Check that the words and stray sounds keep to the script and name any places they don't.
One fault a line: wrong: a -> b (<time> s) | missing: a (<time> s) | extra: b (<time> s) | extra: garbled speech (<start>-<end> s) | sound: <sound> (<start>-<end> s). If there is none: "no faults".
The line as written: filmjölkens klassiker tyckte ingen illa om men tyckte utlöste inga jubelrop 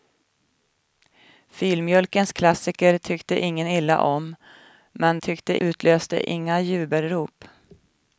no faults